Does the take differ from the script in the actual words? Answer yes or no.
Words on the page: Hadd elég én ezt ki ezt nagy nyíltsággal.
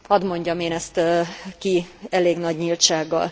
yes